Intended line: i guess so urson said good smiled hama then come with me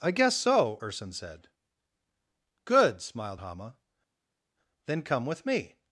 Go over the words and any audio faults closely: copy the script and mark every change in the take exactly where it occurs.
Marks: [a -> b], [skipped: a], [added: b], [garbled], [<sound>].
i guess so urson said good smiled hama then come with me